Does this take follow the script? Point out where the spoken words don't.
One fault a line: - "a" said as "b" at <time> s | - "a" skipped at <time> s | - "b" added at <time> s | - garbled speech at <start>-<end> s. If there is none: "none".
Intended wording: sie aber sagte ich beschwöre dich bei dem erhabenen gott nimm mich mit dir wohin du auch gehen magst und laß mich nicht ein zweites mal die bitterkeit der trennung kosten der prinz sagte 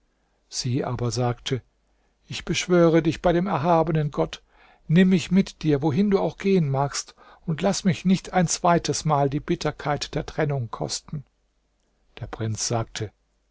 none